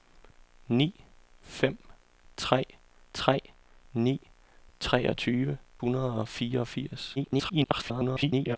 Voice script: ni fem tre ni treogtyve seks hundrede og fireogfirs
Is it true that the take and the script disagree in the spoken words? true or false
true